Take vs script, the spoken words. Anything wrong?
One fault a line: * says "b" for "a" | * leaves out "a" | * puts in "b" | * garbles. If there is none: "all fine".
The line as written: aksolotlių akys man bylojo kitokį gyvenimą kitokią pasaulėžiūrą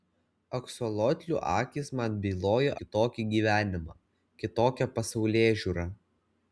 all fine